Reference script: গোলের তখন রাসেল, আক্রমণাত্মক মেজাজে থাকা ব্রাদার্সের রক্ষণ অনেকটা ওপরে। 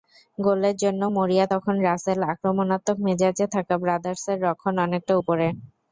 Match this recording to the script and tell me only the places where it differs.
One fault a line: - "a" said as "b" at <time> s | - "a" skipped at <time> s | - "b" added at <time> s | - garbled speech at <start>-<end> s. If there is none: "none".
- "জন্য মরিয়া" added at 0.8 s